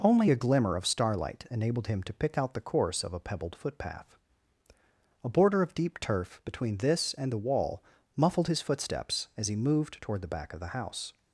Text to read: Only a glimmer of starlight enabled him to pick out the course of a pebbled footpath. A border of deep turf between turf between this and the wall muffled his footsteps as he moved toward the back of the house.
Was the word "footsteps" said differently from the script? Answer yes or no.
no